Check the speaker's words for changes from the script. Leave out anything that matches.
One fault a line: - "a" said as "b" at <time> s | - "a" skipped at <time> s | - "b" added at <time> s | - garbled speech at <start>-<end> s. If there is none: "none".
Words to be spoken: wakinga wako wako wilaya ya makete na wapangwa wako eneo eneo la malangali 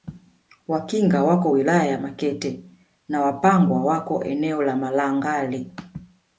- "wako" skipped at 1.5 s
- "eneo" skipped at 4.6 s